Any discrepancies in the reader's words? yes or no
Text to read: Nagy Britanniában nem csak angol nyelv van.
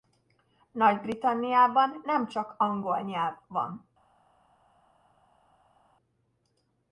no